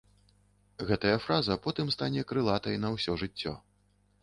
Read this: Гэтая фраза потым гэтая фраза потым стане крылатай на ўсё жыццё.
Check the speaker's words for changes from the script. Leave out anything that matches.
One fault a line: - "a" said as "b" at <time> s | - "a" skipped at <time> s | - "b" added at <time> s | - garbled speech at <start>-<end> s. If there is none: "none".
- "гэтая фраза потым" skipped at 1.9 s